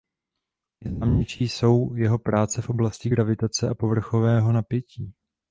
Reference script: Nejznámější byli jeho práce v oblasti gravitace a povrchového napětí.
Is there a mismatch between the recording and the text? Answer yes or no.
yes